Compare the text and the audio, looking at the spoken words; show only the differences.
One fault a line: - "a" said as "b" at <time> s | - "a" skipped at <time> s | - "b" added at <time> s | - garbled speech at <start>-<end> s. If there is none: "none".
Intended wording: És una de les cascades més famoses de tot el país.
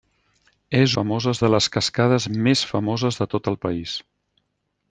- "una" said as "famoses" at 1.0 s